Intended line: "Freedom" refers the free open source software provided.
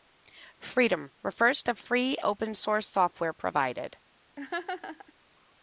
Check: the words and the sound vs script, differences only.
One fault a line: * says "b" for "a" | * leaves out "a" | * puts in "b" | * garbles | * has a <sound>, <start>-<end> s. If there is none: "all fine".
* has a laugh, 4.4-5.1 s